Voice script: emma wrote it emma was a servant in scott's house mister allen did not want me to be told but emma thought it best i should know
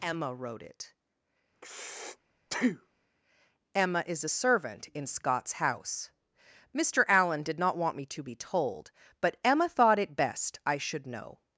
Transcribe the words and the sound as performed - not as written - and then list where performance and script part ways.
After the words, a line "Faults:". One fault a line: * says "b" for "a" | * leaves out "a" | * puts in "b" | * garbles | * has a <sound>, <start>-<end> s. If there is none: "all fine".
emma wrote it emma is a servant in scott's house mister allen did not want me to be told but emma thought it best i should know
Faults:
* has a breath, 1.5-3.1 s
* says "is" for "was"